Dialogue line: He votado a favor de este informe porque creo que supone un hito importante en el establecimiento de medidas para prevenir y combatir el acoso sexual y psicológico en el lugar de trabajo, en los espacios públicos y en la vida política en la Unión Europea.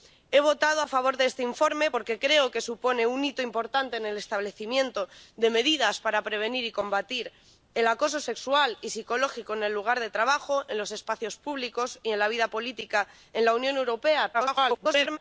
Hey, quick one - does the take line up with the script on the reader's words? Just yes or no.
no